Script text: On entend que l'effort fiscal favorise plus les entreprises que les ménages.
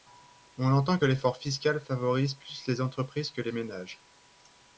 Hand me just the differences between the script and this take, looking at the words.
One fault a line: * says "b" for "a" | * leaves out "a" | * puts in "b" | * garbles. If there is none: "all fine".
all fine